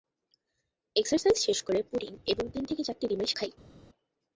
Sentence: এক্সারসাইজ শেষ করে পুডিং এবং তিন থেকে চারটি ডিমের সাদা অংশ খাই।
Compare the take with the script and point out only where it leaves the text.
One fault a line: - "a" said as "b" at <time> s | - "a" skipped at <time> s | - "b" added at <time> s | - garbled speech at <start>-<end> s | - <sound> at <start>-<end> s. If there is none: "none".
- "সাদা অংশ" skipped at 3.3 s